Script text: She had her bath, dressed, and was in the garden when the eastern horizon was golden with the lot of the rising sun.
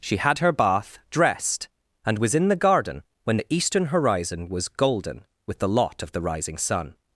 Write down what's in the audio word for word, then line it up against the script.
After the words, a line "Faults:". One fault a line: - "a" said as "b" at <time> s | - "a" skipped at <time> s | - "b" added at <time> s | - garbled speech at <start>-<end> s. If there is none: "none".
She had her bath, dressed, and was in the garden when the eastern horizon was golden with the lot of the rising sun.
Faults:
none